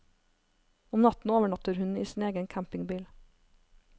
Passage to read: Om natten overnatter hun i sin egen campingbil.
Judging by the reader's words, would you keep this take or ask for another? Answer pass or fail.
pass